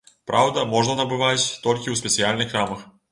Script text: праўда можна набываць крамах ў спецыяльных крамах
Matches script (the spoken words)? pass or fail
fail